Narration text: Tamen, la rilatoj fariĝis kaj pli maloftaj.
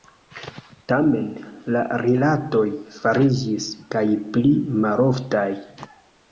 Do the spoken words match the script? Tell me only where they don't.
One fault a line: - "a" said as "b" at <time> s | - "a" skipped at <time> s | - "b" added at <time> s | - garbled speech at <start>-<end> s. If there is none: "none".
none